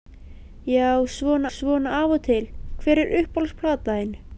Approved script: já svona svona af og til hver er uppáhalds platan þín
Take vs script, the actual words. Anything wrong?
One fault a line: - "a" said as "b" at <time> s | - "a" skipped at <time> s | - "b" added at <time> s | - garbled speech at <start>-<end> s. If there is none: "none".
none